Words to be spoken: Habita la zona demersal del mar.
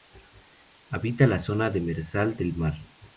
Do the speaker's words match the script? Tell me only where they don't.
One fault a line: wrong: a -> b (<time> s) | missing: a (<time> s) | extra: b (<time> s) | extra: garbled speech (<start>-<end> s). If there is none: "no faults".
no faults